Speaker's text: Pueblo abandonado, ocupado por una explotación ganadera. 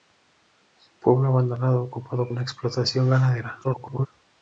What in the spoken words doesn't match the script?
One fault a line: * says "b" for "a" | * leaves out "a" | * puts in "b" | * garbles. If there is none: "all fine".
* leaves out "por"
* garbles